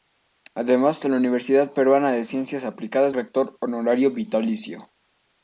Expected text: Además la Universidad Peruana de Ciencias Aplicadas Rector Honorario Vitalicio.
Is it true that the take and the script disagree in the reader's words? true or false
false